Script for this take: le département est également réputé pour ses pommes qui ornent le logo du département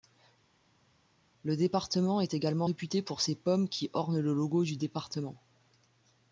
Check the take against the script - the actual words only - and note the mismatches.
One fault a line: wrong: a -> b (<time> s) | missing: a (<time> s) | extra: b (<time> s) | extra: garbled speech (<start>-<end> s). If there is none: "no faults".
no faults